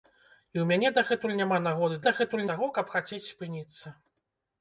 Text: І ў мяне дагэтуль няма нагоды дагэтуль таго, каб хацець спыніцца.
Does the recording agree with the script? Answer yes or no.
yes